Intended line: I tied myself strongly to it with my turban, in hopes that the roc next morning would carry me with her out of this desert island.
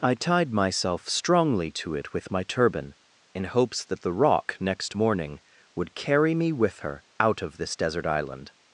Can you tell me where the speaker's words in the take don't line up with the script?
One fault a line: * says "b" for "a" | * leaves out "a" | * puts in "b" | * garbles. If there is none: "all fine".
all fine